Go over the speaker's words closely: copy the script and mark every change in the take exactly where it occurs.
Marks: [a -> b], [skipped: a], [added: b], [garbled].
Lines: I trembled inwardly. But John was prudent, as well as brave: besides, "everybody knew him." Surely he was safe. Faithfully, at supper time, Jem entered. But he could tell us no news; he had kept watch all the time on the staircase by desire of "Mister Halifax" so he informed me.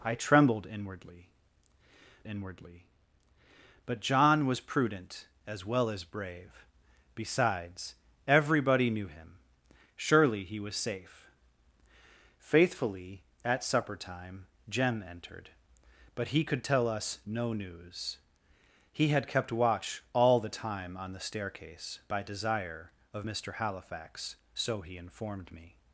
I trembled inwardly. [added: inwardly] But John was prudent, as well as brave: besides, "everybody knew him." Surely he was safe. Faithfully, at supper time, Jem entered. But he could tell us no news; he had kept watch all the time on the staircase by desire of "Mister Halifax" so he informed me.